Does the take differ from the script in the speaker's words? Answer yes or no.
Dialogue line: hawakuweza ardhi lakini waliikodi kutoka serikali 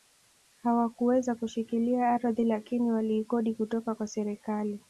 yes